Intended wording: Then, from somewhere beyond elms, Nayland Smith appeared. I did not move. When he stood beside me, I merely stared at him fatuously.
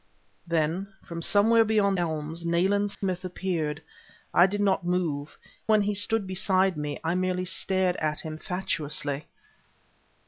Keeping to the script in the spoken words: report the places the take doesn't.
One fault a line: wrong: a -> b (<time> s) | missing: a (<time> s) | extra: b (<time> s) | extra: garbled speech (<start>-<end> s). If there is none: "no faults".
no faults